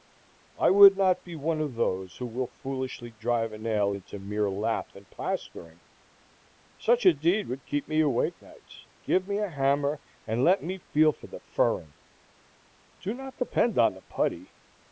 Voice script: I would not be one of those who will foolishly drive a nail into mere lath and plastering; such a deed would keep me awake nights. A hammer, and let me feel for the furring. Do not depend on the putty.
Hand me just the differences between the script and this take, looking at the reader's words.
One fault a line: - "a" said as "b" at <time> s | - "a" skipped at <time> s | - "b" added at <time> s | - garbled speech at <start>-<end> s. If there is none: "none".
- "Give me" added at 9.0 s